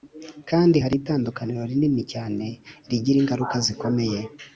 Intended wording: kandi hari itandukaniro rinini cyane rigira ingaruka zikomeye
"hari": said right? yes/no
yes